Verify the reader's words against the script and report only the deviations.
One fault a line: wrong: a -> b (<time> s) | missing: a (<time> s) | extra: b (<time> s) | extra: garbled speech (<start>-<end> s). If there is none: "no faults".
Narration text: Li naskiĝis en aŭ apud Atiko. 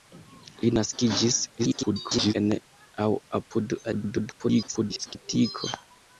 extra: garbled speech (1.6-2.3 s)
extra: garbled speech (3.9-5.2 s)